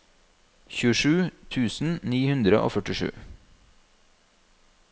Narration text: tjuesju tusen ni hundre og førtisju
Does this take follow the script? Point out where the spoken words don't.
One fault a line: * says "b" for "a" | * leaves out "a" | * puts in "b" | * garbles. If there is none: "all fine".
all fine